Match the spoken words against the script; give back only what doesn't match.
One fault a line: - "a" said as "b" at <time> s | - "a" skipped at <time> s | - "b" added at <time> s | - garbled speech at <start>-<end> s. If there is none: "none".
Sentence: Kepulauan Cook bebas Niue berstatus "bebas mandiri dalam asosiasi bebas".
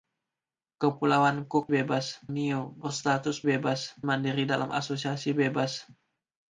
none